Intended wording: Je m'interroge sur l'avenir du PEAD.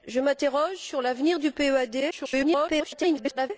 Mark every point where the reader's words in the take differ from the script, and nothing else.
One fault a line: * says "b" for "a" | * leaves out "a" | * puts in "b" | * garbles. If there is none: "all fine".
* garbles